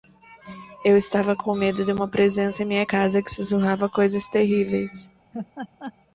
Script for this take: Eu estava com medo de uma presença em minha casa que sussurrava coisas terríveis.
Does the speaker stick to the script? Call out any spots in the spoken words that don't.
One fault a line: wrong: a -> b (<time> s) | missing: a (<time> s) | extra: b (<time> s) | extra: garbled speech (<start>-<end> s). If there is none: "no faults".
no faults